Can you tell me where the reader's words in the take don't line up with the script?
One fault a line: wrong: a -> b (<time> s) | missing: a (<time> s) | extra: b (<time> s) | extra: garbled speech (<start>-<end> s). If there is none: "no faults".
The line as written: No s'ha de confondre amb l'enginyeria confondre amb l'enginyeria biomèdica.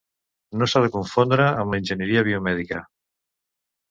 missing: confondre amb l'enginyeria (2.2 s)